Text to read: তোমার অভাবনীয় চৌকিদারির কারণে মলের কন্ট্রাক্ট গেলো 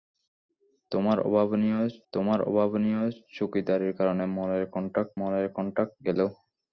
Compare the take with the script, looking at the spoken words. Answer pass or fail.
fail